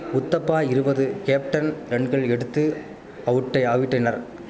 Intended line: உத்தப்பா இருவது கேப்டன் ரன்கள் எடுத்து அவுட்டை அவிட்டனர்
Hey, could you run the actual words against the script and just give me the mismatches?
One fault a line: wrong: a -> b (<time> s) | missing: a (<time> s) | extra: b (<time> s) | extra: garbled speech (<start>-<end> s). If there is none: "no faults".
no faults